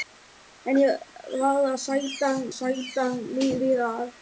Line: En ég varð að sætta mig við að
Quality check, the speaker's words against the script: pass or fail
fail